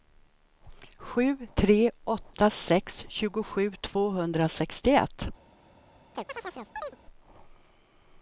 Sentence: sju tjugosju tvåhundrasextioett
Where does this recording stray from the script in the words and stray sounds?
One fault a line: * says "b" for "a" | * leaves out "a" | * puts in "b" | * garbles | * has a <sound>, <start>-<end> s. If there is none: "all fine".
* puts in "tre åtta sex"
* has a chirp, 6.1-7.0 s